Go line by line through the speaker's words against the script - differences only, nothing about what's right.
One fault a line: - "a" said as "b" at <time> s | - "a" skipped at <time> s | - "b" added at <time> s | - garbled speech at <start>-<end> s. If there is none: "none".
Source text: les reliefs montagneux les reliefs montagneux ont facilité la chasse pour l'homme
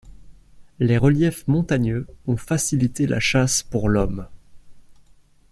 - "les reliefs montagneux" skipped at 2.1 s